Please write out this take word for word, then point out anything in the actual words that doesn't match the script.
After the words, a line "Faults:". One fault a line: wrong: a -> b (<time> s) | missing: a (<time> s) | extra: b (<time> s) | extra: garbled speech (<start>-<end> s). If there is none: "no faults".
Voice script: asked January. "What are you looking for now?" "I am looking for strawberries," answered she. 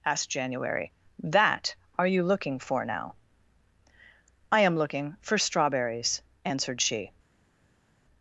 asked January. "That are you looking for now?" "I am looking for strawberries," answered she.
Faults:
wrong: What -> That (1.2 s)